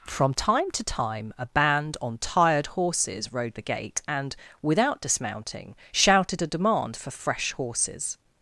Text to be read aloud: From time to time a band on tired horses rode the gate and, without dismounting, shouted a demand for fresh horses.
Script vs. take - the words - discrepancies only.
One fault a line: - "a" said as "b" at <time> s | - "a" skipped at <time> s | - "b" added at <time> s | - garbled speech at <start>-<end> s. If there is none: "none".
none